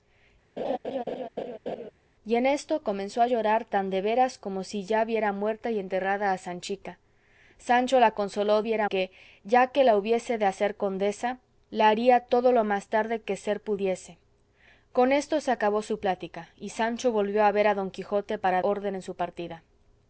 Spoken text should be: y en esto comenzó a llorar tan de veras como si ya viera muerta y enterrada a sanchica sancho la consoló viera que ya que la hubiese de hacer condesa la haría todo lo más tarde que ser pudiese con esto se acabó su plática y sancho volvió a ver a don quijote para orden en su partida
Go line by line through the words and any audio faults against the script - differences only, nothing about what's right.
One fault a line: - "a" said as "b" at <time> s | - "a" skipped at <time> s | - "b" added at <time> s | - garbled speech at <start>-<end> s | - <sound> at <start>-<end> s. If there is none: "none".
- laugh at 0.6-1.9 s